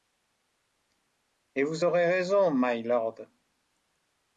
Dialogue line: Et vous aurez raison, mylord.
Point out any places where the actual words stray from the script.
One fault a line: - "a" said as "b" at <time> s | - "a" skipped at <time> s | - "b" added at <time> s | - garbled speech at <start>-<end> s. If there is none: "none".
none